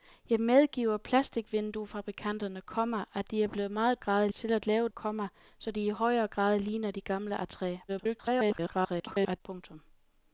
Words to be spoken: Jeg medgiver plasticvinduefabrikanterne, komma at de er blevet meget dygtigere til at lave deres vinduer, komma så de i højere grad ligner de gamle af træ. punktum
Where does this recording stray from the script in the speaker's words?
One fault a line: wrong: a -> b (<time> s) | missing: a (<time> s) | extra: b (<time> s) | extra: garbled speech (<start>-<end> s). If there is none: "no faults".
wrong: dygtigere -> grad (4.0 s)
missing: deres vinduer (4.9 s)
extra: garbled speech (7.9-9.4 s)